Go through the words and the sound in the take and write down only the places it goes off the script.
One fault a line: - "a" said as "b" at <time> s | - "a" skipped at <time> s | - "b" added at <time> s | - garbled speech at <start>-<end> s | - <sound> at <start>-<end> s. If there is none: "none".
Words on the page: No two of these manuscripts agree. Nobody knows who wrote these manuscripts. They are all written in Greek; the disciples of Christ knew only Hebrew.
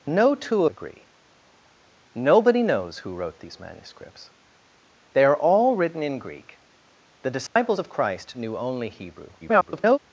- "of these manuscripts" skipped at 0.7 s
- dropout at 7.5-7.6 s
- garbled speech at 9.4-10.0 s